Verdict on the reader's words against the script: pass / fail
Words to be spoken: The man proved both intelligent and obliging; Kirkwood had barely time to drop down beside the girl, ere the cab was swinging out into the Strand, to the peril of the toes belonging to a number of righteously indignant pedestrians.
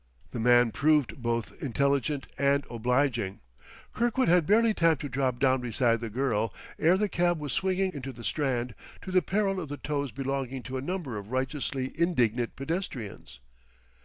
fail